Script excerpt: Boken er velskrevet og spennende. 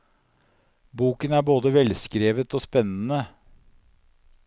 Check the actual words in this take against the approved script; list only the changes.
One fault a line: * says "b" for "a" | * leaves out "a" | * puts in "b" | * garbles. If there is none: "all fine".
* puts in "både"